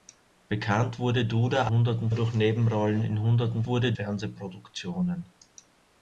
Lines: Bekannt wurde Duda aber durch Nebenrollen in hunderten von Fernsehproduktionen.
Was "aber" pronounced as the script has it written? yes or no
no